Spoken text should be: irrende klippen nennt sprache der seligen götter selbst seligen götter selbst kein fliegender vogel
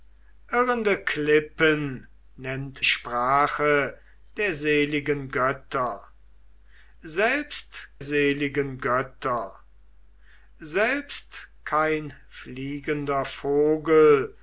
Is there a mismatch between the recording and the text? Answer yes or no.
no